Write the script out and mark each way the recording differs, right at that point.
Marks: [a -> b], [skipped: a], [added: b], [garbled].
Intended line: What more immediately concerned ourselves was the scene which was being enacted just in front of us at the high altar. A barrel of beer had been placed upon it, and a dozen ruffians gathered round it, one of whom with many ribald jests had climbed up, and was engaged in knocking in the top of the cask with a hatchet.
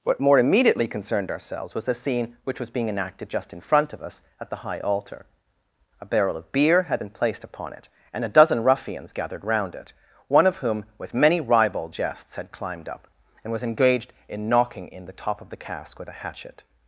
What more immediately concerned ourselves was the scene which was being enacted just in front of us at the high altar. A barrel of beer had been placed upon it, and a dozen ruffians gathered round it, one of whom with many ribald jests had climbed up, and was engaged in knocking in the top of the cask with a hatchet.